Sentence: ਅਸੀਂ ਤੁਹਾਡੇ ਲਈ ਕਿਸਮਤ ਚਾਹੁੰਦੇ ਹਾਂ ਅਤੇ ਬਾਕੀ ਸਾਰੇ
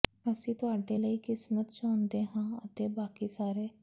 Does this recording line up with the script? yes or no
yes